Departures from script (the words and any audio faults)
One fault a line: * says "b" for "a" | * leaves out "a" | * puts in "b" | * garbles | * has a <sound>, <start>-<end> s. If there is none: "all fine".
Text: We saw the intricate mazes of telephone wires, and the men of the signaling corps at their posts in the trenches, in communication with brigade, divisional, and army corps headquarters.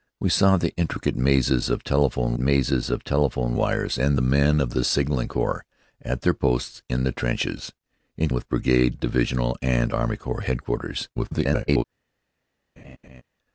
* puts in "mazes of telephone"
* leaves out "communication"
* garbles
* has a laugh, 12.8-13.2 s